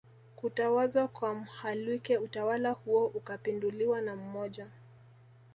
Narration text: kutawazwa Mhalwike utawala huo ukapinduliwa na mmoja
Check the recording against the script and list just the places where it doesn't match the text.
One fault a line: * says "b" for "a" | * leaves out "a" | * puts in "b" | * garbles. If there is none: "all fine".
* puts in "kwa"